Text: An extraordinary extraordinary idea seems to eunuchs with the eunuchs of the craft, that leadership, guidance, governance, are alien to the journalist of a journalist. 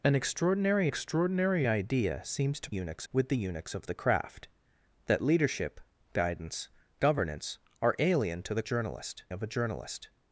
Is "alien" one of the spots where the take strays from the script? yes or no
no